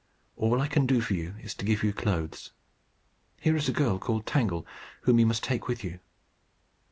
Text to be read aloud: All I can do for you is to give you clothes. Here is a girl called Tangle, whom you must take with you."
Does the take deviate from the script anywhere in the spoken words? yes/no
no